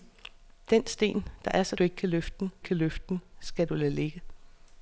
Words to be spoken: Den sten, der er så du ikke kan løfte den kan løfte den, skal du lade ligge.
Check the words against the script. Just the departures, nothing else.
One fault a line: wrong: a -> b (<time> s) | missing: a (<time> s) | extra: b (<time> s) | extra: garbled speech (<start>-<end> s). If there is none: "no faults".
no faults